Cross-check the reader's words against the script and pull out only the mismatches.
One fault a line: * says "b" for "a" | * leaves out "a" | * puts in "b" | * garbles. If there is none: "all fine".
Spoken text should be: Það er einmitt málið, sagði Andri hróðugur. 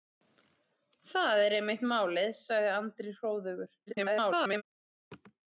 * garbles